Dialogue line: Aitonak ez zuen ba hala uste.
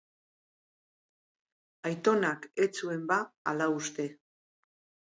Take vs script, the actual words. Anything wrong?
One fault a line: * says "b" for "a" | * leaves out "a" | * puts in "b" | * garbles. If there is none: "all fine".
all fine